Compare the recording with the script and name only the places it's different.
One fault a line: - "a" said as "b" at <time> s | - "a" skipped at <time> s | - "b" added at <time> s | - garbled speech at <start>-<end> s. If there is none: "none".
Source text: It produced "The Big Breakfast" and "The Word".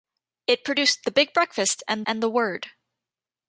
- "and" added at 2.0 s